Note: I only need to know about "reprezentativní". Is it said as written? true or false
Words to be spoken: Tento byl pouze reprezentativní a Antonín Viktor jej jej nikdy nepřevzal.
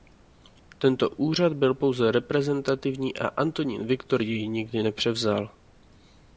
true